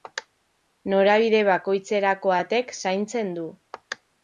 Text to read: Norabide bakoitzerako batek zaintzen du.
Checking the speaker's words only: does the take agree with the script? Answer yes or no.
yes